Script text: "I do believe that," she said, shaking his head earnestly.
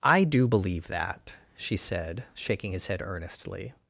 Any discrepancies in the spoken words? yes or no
no